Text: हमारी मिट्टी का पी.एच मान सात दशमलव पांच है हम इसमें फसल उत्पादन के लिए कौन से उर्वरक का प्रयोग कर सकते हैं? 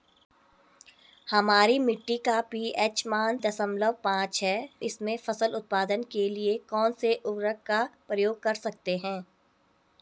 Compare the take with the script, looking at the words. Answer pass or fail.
fail